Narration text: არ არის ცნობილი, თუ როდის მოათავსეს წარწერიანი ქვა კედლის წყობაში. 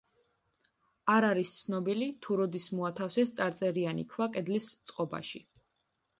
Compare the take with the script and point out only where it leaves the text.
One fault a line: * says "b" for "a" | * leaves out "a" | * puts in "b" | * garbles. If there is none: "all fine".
all fine